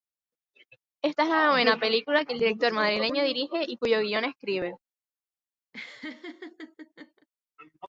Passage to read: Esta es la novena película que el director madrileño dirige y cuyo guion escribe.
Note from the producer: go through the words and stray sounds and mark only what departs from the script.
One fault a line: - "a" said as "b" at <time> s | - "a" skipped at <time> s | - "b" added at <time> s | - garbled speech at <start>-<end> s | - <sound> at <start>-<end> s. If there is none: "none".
- laugh at 5.7-7.3 s